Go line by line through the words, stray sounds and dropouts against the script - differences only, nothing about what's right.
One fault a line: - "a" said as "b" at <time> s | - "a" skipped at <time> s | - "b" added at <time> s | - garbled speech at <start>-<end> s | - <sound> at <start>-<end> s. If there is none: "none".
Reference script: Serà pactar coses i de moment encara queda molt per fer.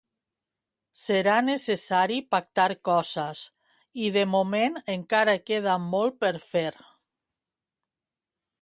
- "necessari" added at 1.5 s